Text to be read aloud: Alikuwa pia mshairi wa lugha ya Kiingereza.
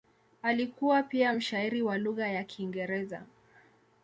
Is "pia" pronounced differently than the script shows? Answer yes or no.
no